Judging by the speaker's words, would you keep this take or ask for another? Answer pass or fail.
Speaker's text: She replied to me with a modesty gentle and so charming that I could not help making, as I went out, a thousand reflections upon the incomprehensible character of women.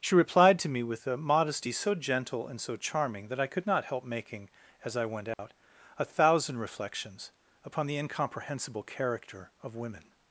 fail